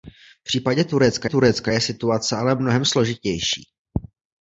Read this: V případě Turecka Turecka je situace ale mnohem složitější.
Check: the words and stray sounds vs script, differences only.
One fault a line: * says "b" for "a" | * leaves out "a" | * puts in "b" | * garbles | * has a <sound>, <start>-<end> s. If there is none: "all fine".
all fine